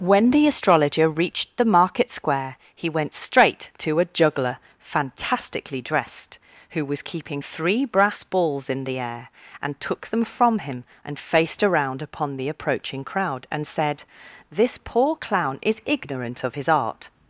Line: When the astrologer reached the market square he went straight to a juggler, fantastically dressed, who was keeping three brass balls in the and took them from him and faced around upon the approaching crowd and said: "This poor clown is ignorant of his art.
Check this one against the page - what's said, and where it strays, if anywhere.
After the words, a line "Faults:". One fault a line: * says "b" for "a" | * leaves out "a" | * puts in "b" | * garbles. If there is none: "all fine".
When the astrologer reached the market square he went straight to a juggler, fantastically dressed, who was keeping three brass balls in the air, and took them from him and faced around upon the approaching crowd and said: "This poor clown is ignorant of his art.
Faults:
* puts in "air"